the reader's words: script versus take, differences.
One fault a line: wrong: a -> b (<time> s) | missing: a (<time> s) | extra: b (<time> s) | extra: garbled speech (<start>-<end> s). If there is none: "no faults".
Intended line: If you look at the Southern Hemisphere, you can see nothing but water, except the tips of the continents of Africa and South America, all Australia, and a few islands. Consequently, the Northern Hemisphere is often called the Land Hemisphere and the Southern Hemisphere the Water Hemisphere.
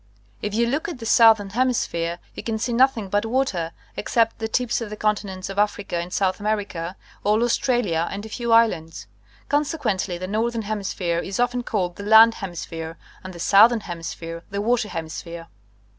no faults